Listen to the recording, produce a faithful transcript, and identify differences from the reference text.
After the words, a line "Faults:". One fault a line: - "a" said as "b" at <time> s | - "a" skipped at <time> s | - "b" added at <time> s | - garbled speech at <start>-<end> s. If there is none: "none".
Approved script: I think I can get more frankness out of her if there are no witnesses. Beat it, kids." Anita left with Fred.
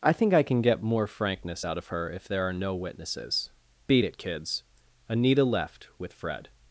I think I can get more frankness out of her if there are no witnesses. Beat it, kids." Anita left with Fred.
Faults:
none